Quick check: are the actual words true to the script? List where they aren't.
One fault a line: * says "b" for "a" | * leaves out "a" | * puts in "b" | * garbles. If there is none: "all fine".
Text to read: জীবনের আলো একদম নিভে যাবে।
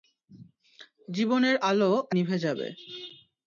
* leaves out "একদম"